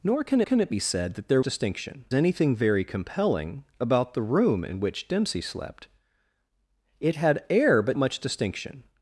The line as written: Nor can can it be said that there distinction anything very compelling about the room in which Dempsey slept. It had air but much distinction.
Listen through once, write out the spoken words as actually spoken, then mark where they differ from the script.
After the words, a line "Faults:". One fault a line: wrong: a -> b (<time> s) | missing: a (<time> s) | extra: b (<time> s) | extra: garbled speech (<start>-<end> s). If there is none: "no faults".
Nor can can it be said that there distinction anything very compelling about the room in which Dempsey slept. It had air but much distinction.
Faults:
no faults